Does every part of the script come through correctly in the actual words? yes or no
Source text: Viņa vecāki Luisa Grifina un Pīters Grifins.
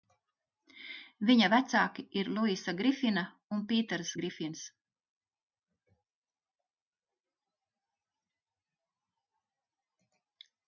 no